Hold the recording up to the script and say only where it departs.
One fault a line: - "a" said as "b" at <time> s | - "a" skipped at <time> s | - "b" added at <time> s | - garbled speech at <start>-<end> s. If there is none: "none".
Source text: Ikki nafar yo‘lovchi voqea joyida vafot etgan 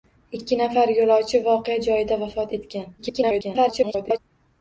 - garbled speech at 3.0-4.2 s